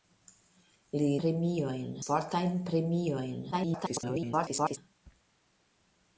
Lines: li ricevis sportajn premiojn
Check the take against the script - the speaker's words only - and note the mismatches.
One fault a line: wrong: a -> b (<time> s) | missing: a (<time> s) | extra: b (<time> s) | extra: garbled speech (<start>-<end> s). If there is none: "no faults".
wrong: ricevis -> premiojn (1.2 s)
extra: garbled speech (3.5-4.8 s)